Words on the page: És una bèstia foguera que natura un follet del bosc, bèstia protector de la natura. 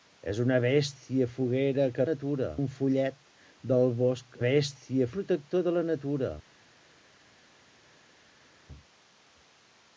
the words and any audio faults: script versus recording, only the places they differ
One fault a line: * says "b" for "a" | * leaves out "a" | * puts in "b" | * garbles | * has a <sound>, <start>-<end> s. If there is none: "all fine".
all fine